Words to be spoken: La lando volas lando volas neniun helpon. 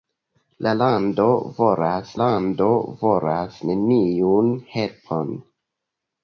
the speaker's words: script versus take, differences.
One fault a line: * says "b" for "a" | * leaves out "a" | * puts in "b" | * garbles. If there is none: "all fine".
all fine